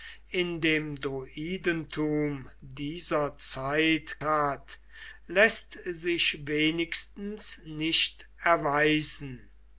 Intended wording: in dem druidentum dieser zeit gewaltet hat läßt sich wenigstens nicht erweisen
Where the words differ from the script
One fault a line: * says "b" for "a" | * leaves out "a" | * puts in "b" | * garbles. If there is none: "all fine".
* leaves out "gewaltet"